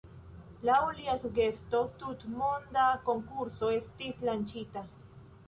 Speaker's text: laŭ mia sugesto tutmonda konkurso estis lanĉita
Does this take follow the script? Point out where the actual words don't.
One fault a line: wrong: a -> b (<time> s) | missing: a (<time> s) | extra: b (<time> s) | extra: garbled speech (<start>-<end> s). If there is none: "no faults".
wrong: mia -> lia (1.0 s)